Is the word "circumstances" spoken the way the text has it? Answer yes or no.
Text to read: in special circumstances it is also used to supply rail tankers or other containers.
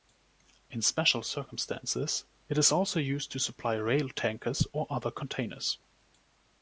yes